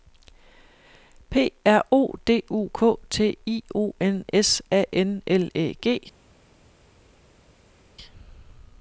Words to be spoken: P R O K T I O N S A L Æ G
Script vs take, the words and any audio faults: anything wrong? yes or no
yes